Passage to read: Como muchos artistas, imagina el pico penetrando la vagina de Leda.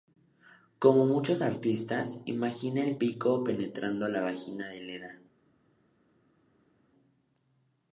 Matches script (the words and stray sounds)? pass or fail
pass